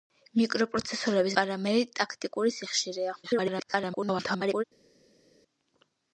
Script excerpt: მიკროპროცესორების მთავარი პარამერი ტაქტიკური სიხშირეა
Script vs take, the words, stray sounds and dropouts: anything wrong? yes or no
yes